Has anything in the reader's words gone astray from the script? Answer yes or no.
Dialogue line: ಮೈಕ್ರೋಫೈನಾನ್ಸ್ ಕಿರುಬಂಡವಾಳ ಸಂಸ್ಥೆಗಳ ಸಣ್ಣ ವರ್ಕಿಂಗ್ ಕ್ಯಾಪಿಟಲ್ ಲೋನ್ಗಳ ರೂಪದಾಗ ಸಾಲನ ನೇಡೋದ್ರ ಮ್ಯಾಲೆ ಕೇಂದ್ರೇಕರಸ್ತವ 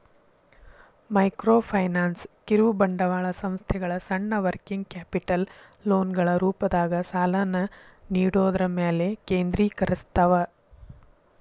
no